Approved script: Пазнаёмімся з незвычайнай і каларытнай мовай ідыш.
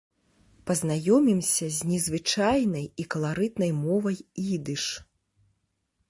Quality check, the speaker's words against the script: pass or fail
pass